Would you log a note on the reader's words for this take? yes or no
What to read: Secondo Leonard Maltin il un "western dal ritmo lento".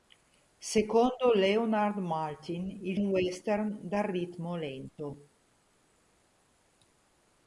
no